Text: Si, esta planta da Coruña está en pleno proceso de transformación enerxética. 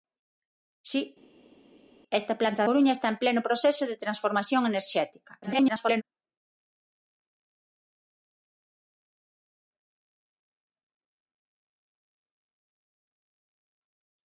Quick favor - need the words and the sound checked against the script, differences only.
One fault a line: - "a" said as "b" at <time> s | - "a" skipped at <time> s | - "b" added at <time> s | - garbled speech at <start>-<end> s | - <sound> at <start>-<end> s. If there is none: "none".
- "da" skipped at 2.6 s
- garbled speech at 5.4-6.0 s